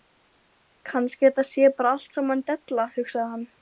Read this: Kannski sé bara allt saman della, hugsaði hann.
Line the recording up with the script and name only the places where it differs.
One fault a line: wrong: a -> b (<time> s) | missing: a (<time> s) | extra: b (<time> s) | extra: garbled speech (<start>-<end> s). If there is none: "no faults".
extra: þetta (1.3 s)